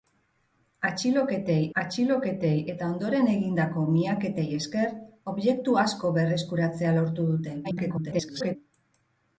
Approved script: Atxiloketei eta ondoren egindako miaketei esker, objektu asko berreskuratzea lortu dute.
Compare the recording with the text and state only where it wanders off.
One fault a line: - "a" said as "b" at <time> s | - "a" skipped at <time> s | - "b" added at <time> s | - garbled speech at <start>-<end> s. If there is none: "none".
- "atxiloketei" added at 1.8 s
- garbled speech at 7.6-8.6 s